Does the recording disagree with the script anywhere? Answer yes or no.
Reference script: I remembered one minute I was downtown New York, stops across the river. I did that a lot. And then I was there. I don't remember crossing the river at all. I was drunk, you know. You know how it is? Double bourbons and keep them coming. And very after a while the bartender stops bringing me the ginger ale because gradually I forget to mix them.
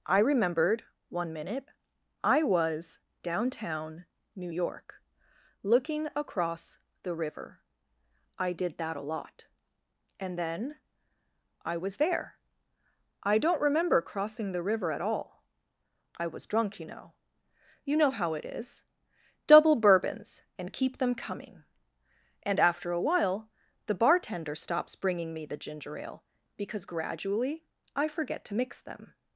yes